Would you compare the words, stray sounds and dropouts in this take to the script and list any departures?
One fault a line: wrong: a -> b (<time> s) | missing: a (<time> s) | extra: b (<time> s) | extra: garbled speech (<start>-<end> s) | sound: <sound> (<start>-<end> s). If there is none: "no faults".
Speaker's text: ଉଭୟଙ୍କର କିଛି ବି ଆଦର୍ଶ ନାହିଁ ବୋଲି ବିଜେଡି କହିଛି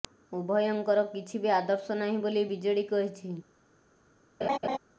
sound: laugh (4.4-4.8 s)